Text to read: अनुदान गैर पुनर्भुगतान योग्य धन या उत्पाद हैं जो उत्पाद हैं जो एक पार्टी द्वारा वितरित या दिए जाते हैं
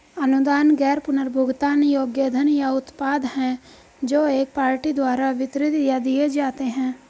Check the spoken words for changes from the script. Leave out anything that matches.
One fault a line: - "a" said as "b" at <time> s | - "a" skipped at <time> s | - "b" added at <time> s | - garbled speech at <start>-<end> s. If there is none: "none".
- "उत्पाद हैं जो" skipped at 4.2 s